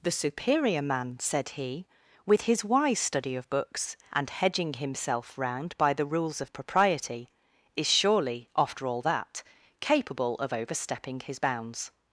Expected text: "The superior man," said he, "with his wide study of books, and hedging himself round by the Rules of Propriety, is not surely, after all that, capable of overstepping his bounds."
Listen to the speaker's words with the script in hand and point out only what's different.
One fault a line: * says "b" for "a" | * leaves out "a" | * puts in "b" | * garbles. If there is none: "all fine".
* says "wise" for "wide"
* leaves out "not"